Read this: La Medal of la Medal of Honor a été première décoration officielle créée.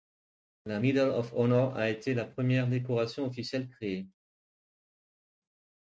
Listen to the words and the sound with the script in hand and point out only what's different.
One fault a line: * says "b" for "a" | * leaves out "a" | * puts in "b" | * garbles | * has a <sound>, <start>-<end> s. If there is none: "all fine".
* leaves out "la Medal of"
* puts in "la"